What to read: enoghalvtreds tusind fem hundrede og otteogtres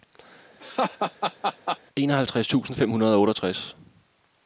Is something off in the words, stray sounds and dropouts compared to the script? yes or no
yes